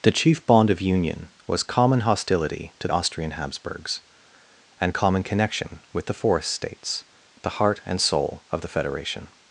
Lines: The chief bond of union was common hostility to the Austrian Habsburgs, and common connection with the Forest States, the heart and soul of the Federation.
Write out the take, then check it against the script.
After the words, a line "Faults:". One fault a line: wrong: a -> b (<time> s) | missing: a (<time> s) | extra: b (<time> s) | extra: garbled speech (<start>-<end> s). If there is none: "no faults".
The chief bond of union was common hostility to Austrian Habsburgs, and common connection with the Forest States, the heart and soul of the Federation.
Faults:
missing: the (2.9 s)